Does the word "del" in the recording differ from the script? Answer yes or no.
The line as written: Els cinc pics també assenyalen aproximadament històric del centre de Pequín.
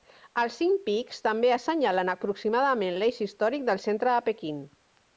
no